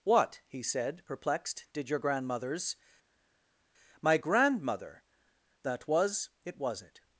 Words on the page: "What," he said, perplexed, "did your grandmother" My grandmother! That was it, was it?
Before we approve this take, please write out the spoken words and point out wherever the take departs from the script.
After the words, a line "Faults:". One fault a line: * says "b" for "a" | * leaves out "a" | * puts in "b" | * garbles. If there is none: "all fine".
"What," he said, perplexed, "did your grandmothers" My grandmother! That was it, was it?
Faults:
* says "grandmothers" for "grandmother"